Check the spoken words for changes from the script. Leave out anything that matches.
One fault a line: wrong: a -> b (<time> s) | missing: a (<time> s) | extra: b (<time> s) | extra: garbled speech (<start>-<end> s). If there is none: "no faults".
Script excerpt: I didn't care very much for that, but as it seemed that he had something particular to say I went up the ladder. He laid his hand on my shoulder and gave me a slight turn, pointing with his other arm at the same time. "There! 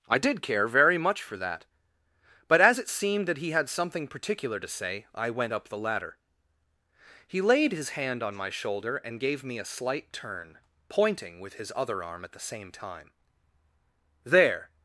wrong: didn't -> did (0.2 s)